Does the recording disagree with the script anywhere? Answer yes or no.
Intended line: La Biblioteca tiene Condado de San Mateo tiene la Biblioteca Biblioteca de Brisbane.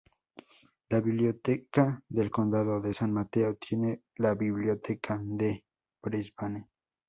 yes